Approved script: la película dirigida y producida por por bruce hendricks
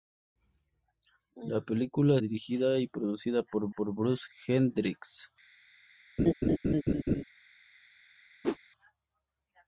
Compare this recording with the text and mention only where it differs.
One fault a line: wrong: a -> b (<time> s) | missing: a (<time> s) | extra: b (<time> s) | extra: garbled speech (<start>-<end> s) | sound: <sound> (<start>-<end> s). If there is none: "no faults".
sound: laugh (6.2-7.2 s)
sound: whoosh (8.4-8.6 s)